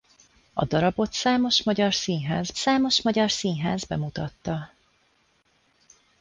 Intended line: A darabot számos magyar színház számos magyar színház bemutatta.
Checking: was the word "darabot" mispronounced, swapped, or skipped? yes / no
no